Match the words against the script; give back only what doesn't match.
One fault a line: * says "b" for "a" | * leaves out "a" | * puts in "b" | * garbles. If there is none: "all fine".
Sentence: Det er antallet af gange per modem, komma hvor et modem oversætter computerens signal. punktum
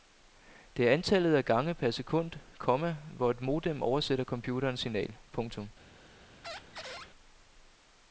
* says "sekund" for "modem"